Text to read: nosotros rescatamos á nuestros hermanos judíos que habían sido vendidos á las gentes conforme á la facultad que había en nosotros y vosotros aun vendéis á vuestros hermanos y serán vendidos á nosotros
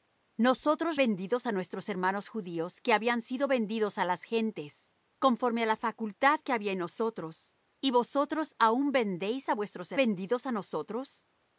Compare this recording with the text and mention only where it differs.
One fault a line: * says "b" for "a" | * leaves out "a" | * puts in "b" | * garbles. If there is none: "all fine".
* says "vendidos" for "rescatamos"
* leaves out "hermanos y serán"